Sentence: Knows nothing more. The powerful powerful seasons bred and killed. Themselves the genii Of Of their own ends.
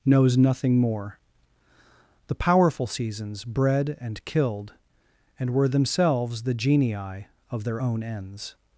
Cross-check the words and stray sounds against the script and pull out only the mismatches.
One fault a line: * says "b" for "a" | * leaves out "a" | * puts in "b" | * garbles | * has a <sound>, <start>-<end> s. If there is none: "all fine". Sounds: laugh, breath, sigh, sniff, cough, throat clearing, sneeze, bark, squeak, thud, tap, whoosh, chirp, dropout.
* leaves out "powerful"
* puts in "And were"
* leaves out "Of"